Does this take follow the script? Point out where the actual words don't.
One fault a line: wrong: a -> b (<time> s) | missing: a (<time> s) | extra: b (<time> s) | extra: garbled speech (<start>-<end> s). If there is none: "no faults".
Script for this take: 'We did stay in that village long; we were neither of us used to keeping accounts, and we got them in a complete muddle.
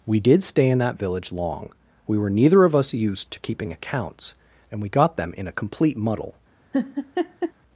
no faults